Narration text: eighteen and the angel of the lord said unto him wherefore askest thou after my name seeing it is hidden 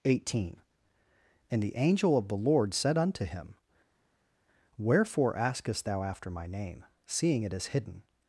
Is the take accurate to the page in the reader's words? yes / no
yes